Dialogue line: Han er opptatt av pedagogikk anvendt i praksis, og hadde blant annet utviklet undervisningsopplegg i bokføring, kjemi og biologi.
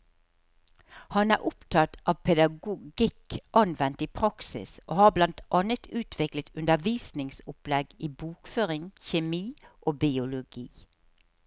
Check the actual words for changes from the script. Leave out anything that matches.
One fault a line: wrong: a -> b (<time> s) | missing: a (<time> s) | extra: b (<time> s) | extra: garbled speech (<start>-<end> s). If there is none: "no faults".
wrong: hadde -> har (5.0 s)